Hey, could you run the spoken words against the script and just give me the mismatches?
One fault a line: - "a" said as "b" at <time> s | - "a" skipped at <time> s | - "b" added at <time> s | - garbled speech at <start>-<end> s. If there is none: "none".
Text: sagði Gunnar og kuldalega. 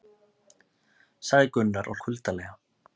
none